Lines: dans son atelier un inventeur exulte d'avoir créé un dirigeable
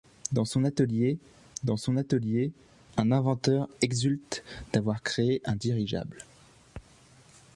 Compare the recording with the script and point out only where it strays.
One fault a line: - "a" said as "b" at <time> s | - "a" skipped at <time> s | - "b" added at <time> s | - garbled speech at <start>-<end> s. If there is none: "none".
- "dans son atelier" added at 1.6 s